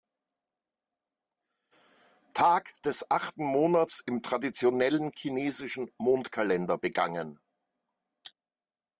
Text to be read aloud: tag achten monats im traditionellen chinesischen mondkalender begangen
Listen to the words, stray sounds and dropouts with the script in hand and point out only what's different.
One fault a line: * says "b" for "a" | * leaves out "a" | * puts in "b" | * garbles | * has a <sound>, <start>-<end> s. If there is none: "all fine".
* puts in "des"